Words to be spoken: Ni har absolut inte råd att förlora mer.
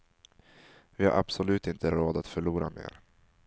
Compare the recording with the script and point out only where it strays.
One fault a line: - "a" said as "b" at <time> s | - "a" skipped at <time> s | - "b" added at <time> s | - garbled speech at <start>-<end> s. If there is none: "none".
- "Ni" said as "Vi" at 0.9 s